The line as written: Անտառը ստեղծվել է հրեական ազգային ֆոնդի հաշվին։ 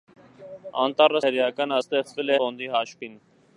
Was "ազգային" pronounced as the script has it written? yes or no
no